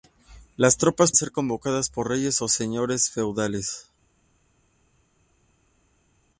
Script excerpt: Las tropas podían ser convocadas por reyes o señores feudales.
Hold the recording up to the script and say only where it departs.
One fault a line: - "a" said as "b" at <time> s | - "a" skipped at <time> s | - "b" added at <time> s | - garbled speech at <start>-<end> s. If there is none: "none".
- "podían" skipped at 1.1 s